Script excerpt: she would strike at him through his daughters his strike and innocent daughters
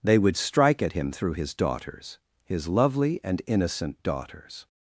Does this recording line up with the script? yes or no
no